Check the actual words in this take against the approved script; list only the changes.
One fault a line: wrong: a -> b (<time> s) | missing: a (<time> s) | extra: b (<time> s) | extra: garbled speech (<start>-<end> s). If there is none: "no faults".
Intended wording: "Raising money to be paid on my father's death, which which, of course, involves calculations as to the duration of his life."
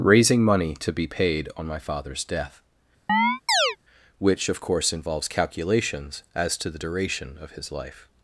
missing: which (4.5 s)